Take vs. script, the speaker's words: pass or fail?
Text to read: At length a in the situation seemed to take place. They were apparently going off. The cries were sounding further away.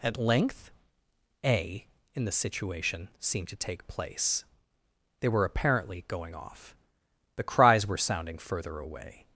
pass